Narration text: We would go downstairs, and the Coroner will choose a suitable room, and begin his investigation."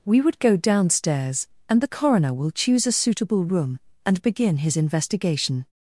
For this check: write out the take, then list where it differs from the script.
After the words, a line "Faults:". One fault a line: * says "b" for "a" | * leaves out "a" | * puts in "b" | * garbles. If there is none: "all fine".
We would go downstairs, and the Coroner will choose a suitable room, and begin his investigation."
Faults:
all fine